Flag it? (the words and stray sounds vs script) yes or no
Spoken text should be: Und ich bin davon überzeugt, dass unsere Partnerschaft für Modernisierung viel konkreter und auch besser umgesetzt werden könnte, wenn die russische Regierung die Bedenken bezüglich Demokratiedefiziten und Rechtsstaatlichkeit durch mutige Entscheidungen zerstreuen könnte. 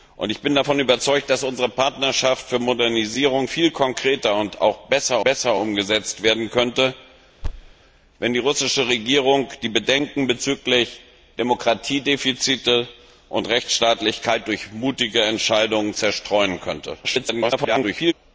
yes